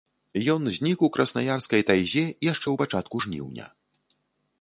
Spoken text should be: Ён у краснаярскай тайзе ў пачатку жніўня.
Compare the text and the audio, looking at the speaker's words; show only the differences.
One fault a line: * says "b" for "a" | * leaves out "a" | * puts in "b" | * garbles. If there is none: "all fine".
* puts in "знік"
* puts in "яшчэ"